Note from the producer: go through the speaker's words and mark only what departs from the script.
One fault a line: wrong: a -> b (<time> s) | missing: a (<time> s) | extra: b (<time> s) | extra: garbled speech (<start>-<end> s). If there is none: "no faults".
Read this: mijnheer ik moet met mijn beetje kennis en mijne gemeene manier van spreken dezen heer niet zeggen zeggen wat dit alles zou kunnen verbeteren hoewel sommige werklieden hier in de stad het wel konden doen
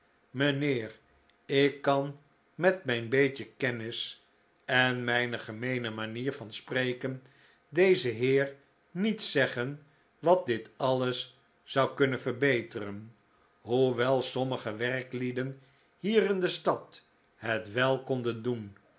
wrong: moet -> kan (1.8 s)
missing: zeggen (9.8 s)